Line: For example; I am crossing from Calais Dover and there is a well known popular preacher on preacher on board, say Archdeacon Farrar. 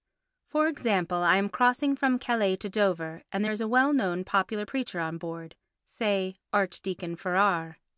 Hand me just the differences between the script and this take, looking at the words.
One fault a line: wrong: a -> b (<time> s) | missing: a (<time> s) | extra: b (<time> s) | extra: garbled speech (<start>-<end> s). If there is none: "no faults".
extra: to (2.5 s)
missing: preacher on (5.2 s)